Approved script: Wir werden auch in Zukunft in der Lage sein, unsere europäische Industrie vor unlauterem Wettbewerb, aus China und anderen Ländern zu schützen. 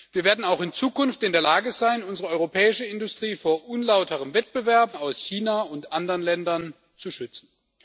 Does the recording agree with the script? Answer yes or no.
yes